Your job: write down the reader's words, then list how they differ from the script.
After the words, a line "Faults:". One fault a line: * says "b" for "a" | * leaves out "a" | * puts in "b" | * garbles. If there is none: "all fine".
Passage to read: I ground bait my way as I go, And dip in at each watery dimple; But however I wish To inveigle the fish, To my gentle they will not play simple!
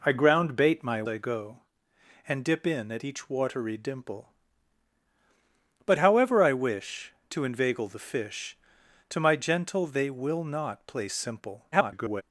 I ground bait my I go, And dip in at each watery dimple; But however I wish To inveigle the fish, To my gentle they will not play simple! [garbled]
Faults:
* leaves out "way as"
* garbles